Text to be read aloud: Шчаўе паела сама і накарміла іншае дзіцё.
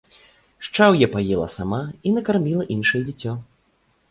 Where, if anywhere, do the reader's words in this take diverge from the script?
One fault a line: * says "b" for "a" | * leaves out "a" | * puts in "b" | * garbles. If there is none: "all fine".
all fine